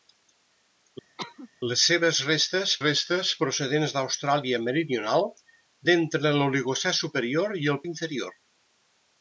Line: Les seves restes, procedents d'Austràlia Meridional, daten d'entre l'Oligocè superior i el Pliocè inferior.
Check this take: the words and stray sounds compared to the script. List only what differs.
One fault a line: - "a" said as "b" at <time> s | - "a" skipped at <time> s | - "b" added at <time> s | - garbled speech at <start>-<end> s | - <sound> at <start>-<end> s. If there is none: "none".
- cough at 1.2-1.5 s
- "restes" added at 2.8 s
- "daten" skipped at 5.3 s
- "Pliocè" skipped at 7.8 s